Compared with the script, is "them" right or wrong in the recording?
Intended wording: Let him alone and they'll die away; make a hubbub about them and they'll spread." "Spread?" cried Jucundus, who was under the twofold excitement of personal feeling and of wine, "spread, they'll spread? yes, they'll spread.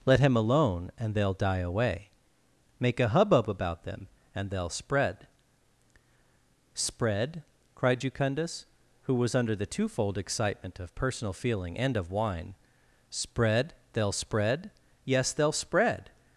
right